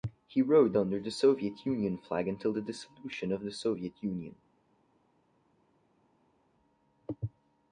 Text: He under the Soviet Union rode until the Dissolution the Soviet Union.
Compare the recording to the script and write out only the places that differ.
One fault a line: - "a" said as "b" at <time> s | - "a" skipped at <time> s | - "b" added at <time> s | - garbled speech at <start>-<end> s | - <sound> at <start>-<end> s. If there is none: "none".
- "rode" added at 0.4 s
- "rode" said as "flag" at 1.9 s
- "of" added at 3.3 s